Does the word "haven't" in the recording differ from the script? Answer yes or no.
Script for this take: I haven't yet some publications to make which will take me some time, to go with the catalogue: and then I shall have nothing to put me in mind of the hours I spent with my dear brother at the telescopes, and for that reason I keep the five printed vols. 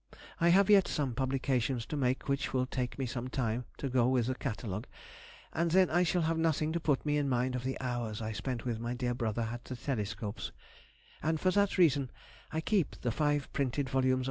yes